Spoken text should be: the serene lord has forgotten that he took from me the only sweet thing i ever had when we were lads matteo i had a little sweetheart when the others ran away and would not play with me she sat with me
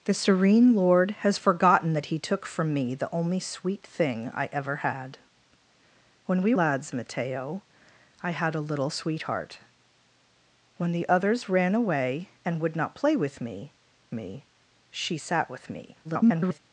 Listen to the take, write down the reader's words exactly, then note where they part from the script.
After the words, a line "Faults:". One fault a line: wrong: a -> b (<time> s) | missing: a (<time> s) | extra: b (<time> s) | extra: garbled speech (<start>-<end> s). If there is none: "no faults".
the serene lord has forgotten that he took from me the only sweet thing i ever had when we lads matteo i had a little sweetheart when the others ran away and would not play with me me she sat with me [garbled]
Faults:
missing: were (6.5 s)
extra: me (14.1 s)
extra: garbled speech (16.0-16.6 s)